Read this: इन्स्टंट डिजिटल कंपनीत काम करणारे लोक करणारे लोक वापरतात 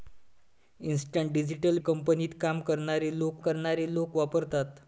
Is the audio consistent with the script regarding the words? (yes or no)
yes